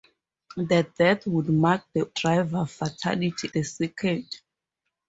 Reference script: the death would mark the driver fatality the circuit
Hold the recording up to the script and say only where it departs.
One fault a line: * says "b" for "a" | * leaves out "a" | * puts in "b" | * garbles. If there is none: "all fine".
all fine